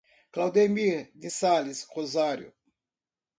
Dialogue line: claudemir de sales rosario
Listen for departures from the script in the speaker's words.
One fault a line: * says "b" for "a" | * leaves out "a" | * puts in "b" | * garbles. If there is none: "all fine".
all fine